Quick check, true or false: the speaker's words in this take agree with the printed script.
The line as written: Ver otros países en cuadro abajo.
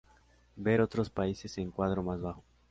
false